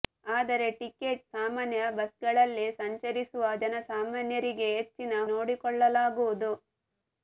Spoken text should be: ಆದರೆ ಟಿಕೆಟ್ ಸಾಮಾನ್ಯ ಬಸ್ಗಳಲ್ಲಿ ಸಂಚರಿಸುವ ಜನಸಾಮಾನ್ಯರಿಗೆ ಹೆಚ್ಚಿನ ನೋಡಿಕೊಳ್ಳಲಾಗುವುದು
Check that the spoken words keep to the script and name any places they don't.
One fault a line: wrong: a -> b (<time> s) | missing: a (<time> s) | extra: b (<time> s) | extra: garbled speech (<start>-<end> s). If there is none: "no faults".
no faults